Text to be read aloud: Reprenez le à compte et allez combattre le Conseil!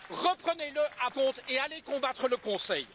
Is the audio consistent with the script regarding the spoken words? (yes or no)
yes